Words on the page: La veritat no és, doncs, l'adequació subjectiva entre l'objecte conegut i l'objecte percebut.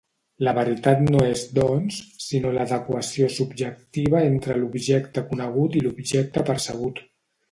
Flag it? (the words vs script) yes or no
yes